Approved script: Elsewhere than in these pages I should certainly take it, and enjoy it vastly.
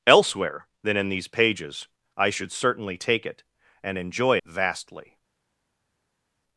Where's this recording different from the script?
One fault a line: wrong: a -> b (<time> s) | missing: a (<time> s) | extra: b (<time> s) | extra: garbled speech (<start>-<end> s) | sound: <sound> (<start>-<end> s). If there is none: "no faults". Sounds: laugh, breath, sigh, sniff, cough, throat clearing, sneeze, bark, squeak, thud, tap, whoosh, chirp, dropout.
missing: it (4.4 s)